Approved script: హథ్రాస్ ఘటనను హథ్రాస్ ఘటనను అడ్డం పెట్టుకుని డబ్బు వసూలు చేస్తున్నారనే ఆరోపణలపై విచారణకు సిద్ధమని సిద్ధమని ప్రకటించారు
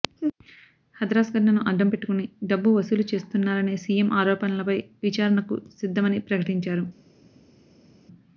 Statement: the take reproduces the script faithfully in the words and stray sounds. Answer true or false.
false